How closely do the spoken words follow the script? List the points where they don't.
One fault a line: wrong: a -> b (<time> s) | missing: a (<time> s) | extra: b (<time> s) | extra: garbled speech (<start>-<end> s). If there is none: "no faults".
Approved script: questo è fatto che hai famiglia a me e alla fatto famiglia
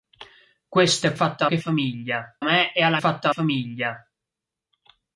no faults